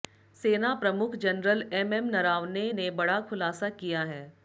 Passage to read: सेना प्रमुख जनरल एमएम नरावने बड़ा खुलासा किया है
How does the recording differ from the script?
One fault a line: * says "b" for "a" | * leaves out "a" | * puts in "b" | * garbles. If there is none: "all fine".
* puts in "ने"